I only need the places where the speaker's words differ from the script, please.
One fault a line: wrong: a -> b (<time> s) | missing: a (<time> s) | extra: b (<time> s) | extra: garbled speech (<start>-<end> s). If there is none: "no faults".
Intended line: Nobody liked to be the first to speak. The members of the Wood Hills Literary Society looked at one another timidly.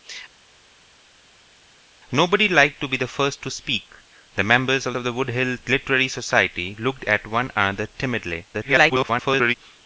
extra: of (4.9 s)
extra: garbled speech (8.5-9.5 s)